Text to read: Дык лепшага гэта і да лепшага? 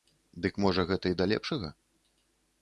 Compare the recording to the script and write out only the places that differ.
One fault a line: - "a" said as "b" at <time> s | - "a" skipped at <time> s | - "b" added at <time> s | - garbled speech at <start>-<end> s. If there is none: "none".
- "лепшага" said as "можа" at 0.7 s